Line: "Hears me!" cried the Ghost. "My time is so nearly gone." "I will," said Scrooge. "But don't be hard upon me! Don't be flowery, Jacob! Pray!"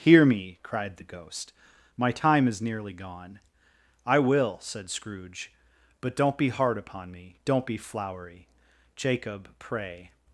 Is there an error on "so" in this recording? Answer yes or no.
yes